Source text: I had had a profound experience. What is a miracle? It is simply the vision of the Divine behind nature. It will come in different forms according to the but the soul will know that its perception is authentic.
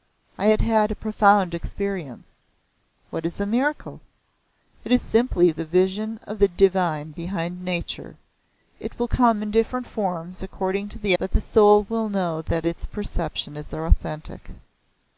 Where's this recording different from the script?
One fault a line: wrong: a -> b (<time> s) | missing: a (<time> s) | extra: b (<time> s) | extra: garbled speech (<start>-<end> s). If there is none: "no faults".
no faults